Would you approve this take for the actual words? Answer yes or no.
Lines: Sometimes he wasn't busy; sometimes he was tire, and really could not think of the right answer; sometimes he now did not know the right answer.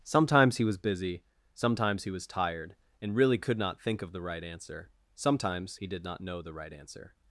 no